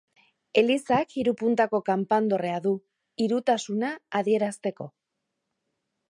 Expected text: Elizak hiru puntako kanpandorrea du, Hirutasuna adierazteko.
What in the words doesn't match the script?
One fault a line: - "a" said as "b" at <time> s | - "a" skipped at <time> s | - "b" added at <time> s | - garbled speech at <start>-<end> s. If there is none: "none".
none